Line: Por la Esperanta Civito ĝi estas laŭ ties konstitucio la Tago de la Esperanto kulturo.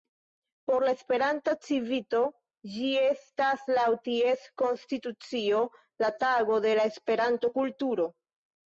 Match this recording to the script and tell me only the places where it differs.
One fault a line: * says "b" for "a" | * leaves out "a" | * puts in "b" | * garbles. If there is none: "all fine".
all fine